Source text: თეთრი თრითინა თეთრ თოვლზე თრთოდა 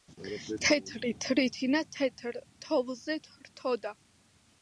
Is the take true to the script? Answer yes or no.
yes